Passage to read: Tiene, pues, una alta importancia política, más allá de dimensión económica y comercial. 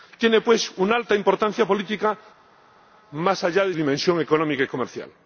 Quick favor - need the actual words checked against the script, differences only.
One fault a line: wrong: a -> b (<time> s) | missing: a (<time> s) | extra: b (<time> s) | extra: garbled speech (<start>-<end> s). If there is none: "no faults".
no faults